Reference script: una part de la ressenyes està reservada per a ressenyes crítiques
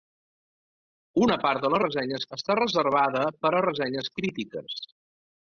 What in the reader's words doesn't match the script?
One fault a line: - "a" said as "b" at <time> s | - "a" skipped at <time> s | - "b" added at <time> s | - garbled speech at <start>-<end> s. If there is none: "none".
none